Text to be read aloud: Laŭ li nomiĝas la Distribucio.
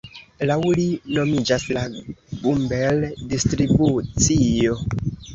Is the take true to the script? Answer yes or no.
no